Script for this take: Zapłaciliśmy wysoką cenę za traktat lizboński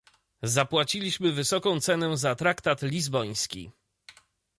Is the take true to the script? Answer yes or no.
yes